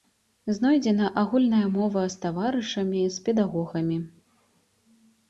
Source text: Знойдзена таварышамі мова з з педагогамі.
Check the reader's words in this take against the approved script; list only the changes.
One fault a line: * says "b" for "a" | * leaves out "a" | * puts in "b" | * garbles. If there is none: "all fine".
* says "агульная" for "таварышамі"
* puts in "таварышамі"